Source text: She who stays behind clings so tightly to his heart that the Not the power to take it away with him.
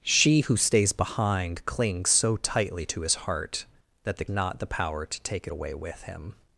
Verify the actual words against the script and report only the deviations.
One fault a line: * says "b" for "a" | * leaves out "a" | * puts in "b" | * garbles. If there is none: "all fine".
all fine